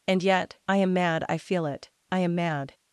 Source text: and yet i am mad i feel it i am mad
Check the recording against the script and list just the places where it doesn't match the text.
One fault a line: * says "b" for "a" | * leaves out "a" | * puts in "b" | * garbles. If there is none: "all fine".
all fine